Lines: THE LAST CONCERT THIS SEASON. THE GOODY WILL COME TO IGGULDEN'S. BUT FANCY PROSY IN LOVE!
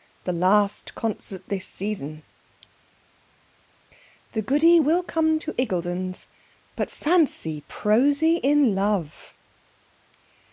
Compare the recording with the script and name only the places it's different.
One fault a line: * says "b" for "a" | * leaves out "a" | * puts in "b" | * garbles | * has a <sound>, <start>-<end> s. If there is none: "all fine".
all fine